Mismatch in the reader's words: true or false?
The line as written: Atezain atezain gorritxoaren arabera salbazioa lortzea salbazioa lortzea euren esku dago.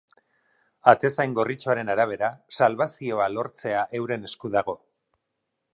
true